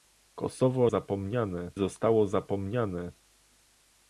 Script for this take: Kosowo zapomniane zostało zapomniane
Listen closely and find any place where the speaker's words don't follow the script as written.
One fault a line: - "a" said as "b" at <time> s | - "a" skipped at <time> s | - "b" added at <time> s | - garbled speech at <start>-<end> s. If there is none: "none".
none